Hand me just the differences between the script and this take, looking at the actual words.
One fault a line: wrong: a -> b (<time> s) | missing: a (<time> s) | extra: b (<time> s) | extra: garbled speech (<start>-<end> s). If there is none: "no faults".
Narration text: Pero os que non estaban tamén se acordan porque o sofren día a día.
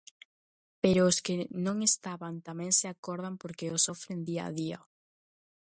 no faults